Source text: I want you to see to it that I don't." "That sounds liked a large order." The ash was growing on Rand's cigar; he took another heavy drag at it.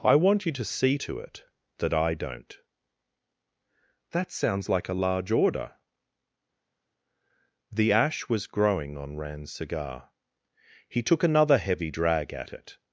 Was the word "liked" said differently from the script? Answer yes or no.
yes